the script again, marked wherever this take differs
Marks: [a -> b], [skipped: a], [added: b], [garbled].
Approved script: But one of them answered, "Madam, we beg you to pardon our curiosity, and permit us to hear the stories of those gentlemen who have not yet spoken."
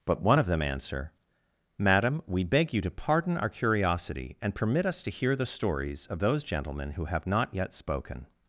But one of them [answered, -> answer] "Madam, we beg you to pardon our curiosity, and permit us to hear the stories of those gentlemen who have not yet spoken."